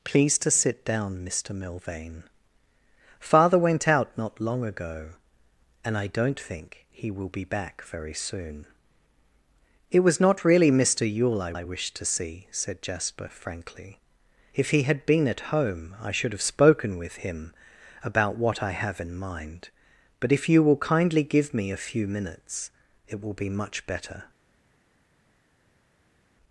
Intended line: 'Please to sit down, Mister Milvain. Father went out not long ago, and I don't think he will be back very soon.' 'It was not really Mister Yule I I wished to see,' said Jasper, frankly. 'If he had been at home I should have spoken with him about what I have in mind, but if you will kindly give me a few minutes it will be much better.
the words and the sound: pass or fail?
pass